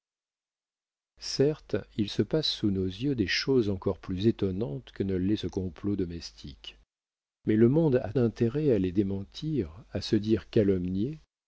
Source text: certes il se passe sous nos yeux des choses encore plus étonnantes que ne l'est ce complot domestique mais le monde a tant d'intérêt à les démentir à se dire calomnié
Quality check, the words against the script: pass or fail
fail